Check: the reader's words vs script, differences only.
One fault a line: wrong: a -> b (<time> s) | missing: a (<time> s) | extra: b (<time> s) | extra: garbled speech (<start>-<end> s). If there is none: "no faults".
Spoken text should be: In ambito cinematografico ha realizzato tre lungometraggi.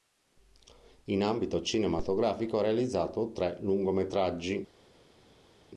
no faults